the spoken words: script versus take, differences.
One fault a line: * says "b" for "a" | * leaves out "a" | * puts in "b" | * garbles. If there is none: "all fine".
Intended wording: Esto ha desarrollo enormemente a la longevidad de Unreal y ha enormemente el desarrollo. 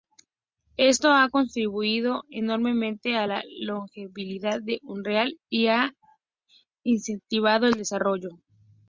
* says "contribuido" for "desarrollo"
* says "incentivado" for "enormemente"